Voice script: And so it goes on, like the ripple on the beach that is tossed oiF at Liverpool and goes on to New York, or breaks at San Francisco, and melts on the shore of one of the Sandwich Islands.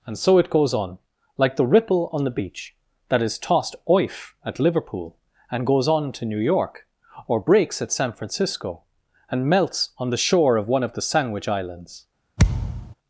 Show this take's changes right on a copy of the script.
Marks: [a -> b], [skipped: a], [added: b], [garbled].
And so it goes on, like the ripple on the beach that is tossed oiF at Liverpool and goes on to New York, or breaks at San Francisco, and melts on the shore of one of the Sandwich Islands.